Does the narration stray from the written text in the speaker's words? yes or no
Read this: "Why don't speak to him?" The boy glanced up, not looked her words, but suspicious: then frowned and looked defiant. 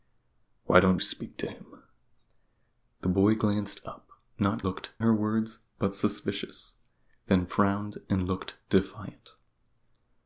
no